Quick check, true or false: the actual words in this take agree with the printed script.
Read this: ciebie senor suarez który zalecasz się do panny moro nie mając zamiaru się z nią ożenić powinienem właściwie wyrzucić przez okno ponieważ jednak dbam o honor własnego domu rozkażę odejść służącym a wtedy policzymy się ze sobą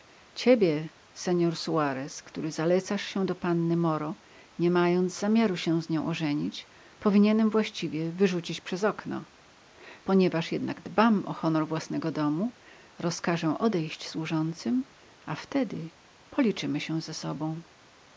true